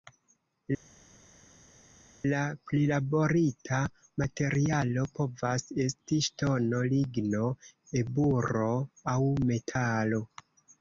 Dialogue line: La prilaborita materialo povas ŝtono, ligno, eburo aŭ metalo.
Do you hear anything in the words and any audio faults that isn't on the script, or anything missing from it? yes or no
yes